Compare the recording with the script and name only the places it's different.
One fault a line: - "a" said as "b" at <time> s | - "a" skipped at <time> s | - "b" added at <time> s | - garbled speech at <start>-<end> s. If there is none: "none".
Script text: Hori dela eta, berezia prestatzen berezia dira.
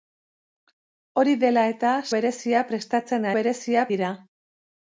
none